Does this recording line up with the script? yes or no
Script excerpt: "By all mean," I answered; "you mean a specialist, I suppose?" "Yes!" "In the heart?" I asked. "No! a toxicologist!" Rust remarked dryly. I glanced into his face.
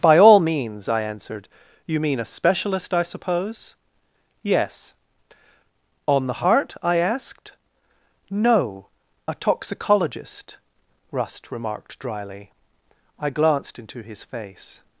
no